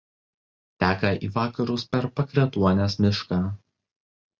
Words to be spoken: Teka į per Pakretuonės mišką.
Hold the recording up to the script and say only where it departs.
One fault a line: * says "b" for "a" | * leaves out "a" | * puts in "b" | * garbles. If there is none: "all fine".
* puts in "vakarus"